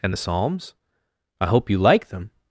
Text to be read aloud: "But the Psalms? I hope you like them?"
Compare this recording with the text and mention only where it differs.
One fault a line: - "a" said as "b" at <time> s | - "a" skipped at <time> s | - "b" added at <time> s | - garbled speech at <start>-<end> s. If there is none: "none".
- "But" said as "And" at 0.0 s